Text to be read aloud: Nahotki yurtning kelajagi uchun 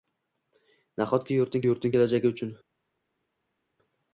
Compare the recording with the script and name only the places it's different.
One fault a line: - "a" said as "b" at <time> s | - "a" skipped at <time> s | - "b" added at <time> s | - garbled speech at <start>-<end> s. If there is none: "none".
- "yurtning" added at 1.7 s